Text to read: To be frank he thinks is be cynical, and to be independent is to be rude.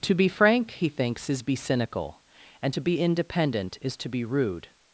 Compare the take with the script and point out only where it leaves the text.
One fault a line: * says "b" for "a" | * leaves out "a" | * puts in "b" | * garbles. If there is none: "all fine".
all fine